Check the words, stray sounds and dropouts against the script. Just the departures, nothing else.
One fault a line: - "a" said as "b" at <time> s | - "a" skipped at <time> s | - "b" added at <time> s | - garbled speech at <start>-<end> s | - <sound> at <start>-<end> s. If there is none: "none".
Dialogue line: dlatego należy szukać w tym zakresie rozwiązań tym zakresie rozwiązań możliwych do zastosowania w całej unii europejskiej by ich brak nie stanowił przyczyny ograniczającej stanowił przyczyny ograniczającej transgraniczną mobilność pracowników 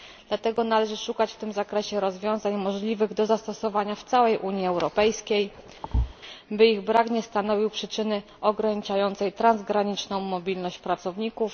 - "tym zakresie rozwiązań" skipped at 2.5 s
- thud at 5.8-6.1 s
- "stanowił przyczyny ograniczającej" skipped at 9.3 s